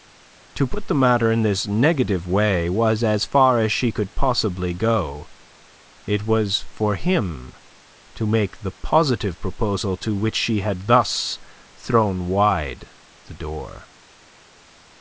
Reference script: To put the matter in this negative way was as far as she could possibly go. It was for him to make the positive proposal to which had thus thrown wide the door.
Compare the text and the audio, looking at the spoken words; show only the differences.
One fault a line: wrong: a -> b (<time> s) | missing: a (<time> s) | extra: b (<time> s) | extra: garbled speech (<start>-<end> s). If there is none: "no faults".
extra: she (10.3 s)